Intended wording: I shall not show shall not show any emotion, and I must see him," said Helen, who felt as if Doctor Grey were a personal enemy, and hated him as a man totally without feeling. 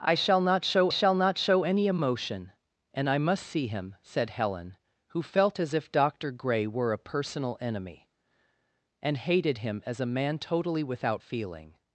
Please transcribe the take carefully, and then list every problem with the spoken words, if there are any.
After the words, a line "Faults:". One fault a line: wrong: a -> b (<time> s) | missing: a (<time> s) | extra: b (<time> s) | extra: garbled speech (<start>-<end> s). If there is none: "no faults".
I shall not show shall not show any emotion, and I must see him," said Helen, who felt as if Doctor Grey were a personal enemy, and hated him as a man totally without feeling.
Faults:
no faults